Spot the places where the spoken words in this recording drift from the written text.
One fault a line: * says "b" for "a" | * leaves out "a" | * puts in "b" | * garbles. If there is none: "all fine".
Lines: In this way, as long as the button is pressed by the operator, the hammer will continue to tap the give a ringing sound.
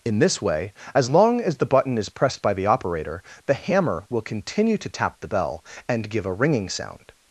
* puts in "bell and"